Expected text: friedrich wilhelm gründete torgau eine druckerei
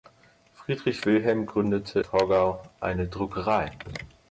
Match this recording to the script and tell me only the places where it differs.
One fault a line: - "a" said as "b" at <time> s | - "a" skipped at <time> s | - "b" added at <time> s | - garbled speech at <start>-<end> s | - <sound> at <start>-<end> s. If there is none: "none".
none